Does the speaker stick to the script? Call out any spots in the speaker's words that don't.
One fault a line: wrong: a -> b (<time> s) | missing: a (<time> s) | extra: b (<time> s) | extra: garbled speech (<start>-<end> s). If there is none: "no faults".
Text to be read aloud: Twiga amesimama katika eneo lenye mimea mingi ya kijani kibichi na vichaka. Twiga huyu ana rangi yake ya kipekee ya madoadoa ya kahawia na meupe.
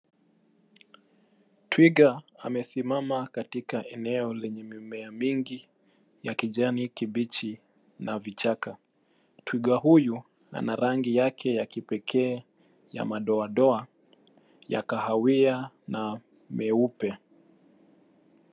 no faults